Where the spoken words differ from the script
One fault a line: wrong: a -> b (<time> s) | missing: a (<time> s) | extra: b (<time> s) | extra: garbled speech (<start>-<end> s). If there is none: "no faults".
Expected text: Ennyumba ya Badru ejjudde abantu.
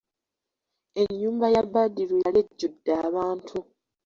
extra: yali (2.2 s)